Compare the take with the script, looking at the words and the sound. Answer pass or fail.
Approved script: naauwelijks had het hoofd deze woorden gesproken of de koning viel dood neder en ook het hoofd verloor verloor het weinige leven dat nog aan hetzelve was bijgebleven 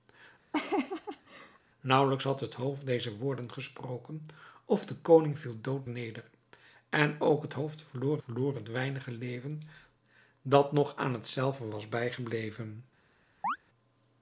fail